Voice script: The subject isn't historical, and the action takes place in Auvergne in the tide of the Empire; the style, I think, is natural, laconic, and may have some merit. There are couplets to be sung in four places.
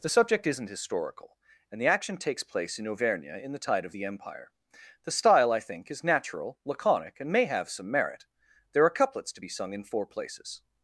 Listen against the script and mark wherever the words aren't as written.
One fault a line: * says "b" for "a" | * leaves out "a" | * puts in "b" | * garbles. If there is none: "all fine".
all fine